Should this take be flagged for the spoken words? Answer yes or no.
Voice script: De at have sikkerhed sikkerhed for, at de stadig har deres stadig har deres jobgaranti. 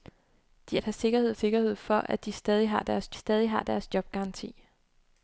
no